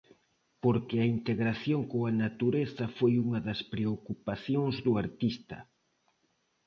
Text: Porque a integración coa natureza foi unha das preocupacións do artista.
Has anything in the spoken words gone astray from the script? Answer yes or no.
no